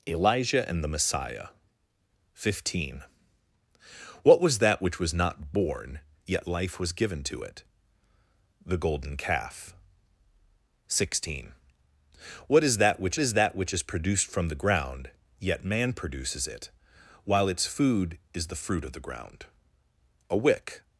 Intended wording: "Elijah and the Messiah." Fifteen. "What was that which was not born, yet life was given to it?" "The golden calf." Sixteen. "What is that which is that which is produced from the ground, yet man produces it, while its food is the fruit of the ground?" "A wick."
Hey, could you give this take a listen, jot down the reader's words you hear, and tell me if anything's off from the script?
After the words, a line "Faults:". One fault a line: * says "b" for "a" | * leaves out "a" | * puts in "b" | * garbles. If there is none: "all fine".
"Elijah and the Messiah." Fifteen. "What was that which was not born, yet life was given to it?" "The golden calf." Sixteen. "What is that which is that which is produced from the ground, yet man produces it, while its food is the fruit of the ground?" "A wick."
Faults:
all fine